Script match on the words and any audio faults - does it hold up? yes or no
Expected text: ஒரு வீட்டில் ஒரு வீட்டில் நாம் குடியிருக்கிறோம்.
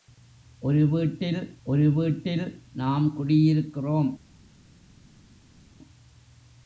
yes